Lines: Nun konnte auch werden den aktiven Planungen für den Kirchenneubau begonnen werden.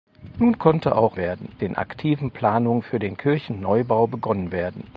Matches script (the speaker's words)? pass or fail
pass